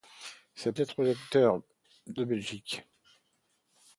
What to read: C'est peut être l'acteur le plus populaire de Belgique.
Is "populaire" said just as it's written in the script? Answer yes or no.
no